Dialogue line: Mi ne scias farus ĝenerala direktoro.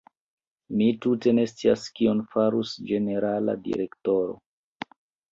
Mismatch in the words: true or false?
true